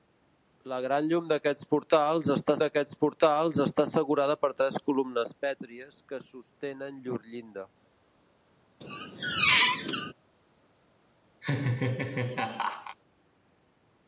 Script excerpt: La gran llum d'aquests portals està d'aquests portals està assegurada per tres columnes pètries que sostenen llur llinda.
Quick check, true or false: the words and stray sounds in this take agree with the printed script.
false